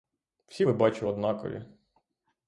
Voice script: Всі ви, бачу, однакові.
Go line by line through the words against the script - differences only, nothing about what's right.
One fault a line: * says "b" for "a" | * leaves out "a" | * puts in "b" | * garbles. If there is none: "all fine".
all fine